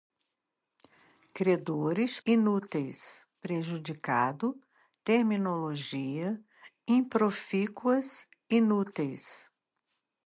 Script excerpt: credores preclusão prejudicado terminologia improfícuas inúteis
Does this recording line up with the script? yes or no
no